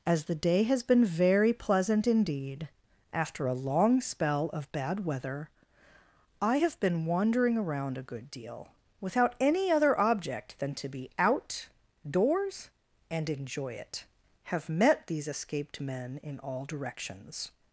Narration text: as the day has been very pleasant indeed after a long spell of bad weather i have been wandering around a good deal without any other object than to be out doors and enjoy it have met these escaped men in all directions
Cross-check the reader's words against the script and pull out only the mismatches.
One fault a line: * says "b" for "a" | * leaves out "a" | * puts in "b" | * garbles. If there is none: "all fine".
all fine